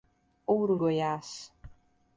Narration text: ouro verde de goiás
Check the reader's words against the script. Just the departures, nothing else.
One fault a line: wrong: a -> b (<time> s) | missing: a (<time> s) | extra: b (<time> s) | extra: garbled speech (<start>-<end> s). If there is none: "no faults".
missing: verde de (0.8 s)